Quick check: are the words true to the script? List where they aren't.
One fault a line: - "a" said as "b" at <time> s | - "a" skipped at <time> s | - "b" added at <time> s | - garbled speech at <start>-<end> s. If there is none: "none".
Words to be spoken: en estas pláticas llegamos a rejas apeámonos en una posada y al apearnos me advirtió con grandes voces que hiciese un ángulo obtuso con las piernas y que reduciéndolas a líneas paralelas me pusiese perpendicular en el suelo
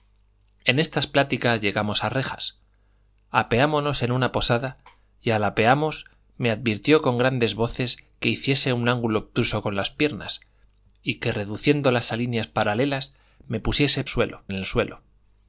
- "perpendicular" said as "suelo" at 14.1 s